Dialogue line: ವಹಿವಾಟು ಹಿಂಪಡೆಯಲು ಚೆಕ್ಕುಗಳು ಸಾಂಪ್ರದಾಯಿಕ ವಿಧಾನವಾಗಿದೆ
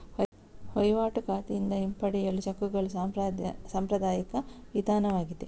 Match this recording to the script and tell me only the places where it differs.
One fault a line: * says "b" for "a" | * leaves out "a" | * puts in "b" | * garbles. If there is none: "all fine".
* puts in "ಖಾತೆಯಿಂದ"